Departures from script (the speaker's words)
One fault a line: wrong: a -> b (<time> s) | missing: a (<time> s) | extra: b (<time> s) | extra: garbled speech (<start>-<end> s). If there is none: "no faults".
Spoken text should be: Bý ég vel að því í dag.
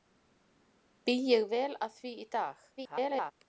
extra: garbled speech (2.8-3.3 s)